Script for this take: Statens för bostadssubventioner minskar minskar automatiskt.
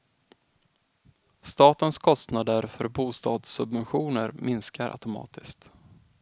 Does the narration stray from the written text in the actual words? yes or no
yes